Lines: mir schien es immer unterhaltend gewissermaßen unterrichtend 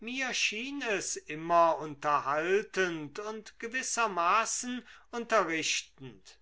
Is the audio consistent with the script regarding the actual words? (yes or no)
no